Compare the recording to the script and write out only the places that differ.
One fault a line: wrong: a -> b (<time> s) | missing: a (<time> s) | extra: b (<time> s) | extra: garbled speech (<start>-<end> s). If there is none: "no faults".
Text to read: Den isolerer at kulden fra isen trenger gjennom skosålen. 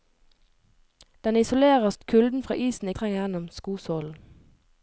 no faults